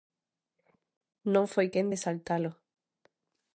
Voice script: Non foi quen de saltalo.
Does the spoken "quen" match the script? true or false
true